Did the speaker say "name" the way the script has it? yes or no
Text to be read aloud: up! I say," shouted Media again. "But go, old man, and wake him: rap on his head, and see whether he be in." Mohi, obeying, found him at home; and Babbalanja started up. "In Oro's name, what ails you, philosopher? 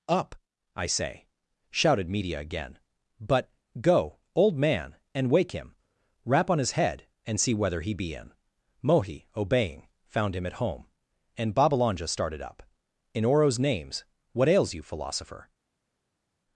no